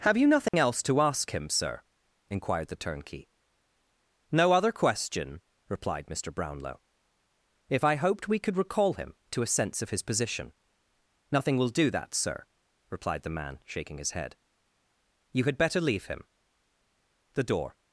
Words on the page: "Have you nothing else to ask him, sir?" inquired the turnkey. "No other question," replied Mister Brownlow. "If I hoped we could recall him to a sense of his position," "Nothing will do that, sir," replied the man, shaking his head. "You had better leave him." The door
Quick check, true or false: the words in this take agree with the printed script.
true